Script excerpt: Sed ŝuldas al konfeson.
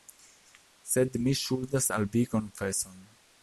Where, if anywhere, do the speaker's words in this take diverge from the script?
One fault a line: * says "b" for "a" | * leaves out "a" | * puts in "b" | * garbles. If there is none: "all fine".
* puts in "mi"
* puts in "vi"